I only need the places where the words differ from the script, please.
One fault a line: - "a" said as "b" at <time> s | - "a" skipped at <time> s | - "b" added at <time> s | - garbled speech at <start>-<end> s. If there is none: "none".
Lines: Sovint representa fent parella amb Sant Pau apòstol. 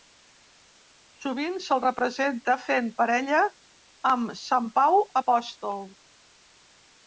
- "se'l" added at 1.6 s